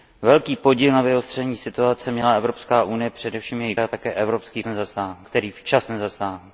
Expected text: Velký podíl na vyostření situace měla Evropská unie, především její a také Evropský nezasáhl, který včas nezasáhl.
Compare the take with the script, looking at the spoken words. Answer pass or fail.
pass